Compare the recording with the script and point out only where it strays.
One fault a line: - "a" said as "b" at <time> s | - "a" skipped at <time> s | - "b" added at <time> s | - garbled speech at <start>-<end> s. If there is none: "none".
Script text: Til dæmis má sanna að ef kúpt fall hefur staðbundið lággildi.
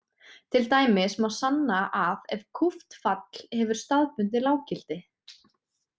none